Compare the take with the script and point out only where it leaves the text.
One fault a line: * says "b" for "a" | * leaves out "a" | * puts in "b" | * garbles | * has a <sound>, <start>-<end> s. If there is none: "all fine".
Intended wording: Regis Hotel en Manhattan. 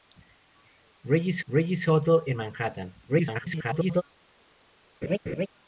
* puts in "regis"
* garbles
* has a laugh, 5.0-5.5 s